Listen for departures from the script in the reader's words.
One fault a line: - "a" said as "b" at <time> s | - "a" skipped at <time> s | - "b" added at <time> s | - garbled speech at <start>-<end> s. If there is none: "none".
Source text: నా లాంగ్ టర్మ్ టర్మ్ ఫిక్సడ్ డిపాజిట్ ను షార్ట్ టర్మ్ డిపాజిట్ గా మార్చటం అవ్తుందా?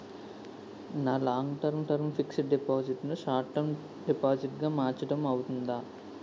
none